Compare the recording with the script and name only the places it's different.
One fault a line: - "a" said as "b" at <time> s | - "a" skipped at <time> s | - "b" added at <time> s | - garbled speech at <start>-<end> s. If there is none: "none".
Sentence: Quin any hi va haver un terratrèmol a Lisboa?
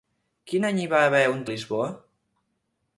- "terratrèmol" skipped at 1.4 s